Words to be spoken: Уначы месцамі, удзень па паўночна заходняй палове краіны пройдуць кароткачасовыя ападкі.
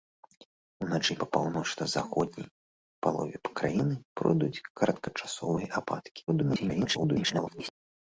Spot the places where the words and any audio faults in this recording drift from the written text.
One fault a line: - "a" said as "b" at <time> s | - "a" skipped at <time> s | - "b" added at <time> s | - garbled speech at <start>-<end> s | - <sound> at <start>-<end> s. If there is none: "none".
- "месцамі удзень" skipped at 1.1 s
- garbled speech at 6.3-7.7 s